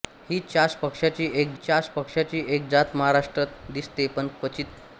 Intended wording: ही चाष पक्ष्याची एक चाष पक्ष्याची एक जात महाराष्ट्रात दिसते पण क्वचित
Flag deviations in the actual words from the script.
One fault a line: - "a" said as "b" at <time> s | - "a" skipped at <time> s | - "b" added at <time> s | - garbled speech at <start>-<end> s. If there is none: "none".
none